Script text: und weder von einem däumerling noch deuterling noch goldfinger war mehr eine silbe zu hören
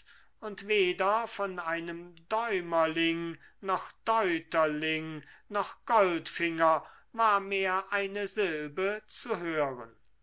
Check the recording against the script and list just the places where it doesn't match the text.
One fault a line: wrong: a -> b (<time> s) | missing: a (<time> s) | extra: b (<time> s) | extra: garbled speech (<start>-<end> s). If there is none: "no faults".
no faults